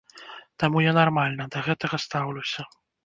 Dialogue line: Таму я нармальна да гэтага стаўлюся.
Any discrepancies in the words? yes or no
no